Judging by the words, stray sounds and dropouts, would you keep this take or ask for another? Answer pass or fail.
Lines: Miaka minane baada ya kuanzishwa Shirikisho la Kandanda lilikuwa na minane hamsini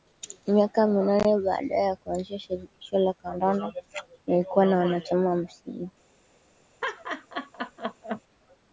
fail